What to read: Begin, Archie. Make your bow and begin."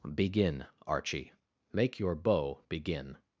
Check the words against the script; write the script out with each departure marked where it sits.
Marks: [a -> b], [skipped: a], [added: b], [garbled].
Begin, Archie. Make your bow [skipped: and] begin."